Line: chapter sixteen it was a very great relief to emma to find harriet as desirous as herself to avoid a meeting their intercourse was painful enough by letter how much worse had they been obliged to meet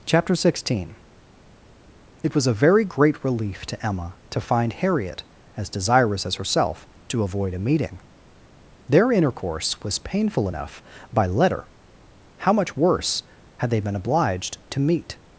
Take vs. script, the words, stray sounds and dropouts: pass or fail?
pass